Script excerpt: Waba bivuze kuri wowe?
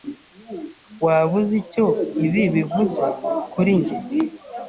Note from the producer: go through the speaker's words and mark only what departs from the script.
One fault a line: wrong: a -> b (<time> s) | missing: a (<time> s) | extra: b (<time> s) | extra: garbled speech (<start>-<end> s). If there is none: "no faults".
extra: uzi icyo ibi (1.4 s)
wrong: wowe -> njye (3.8 s)